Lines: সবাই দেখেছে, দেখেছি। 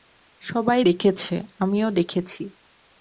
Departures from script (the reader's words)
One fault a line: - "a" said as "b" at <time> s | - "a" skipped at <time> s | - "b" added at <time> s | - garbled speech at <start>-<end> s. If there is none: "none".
- "আমিও" added at 1.6 s